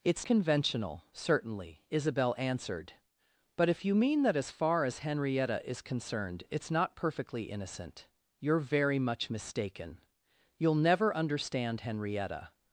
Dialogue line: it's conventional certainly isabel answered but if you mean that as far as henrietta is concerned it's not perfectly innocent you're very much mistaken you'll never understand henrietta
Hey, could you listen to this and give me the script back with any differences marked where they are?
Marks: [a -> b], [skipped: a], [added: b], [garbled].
it's conventional certainly isabel answered but if you mean that as far as henrietta is concerned it's not perfectly innocent you're very much mistaken you'll never understand henrietta